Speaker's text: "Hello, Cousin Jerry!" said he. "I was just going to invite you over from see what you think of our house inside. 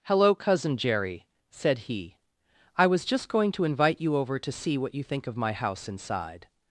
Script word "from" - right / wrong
wrong